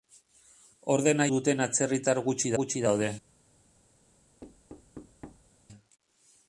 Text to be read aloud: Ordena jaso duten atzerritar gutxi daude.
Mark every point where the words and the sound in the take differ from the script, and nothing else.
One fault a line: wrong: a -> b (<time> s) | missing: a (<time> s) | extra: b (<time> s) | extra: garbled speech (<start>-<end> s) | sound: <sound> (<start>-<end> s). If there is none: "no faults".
missing: jaso (1.3 s)
extra: gutxi (2.6 s)
sound: thud (4.4-5.5 s)